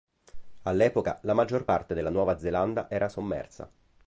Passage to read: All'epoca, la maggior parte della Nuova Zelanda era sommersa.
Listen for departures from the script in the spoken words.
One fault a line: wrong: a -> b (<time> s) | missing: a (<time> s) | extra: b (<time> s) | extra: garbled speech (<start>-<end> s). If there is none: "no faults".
no faults